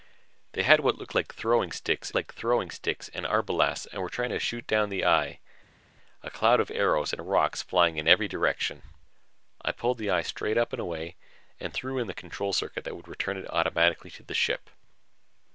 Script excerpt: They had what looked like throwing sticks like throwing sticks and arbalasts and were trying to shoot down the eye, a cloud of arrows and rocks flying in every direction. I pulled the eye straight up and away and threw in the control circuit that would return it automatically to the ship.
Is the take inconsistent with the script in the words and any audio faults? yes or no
no